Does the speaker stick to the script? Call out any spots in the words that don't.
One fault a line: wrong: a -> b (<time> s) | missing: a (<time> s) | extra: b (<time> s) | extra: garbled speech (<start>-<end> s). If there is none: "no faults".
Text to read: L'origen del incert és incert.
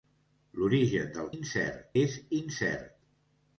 no faults